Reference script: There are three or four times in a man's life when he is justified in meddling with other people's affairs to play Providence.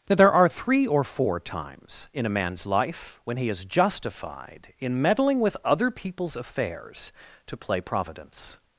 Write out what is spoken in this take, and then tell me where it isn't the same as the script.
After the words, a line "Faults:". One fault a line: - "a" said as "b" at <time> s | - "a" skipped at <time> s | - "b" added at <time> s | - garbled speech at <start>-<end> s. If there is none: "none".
that There are three or four times in a man's life when he is justified in meddling with other people's affairs to play Providence.
Faults:
- "that" added at 0.1 s